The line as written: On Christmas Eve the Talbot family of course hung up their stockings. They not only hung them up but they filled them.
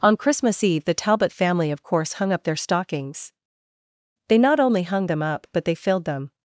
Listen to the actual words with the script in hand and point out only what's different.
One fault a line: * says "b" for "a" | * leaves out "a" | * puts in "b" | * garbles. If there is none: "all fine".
all fine